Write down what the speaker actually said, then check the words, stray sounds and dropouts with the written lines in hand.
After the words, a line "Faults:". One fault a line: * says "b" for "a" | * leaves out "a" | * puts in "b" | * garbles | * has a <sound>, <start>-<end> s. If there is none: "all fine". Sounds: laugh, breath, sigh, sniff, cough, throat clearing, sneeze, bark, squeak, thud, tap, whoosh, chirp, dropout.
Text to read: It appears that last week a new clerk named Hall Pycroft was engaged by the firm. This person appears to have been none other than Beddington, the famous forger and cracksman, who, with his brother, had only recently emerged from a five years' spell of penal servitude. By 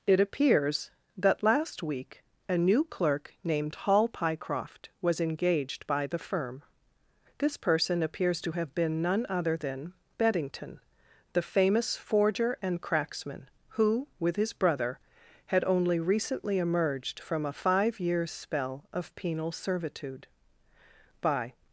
It appears that last week a new clerk named Hall Pycroft was engaged by the firm. This person appears to have been none other than Beddington, the famous forger and cracksman, who, with his brother, had only recently emerged from a five years' spell of penal servitude. By
Faults:
all fine